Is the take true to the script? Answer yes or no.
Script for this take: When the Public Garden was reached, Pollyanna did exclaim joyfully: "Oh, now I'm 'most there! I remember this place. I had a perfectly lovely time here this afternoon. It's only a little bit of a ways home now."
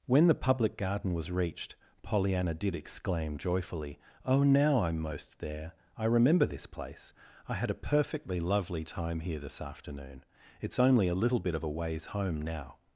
yes